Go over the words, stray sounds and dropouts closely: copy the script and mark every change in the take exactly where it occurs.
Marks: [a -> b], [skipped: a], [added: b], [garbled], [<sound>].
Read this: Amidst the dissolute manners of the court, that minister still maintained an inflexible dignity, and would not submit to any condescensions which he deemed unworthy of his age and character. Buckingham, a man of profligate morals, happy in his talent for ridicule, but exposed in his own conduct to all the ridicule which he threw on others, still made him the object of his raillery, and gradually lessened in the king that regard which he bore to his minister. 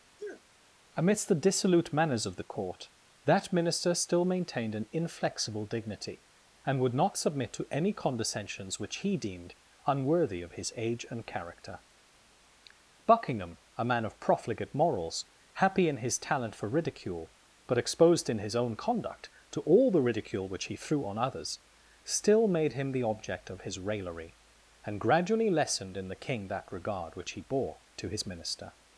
[sneeze] Amidst the dissolute manners of the court, that minister still maintained an inflexible dignity, and would not submit to any condescensions which he deemed unworthy of his age and character. Buckingham, a man of profligate morals, happy in his talent for ridicule, but exposed in his own conduct to all the ridicule which he threw on others, still made him the object of his raillery, and gradually lessened in the king that regard which he bore to his minister.